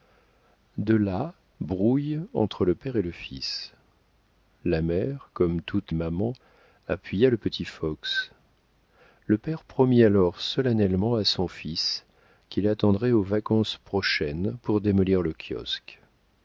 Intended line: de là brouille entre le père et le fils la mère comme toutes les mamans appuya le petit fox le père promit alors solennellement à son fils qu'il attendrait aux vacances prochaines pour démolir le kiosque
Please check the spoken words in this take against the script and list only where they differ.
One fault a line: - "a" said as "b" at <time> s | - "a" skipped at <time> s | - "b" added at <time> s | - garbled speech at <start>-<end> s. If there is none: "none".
- "les" skipped at 5.9 s